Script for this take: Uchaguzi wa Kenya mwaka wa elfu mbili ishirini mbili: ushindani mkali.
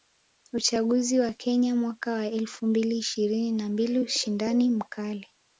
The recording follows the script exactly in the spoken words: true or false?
false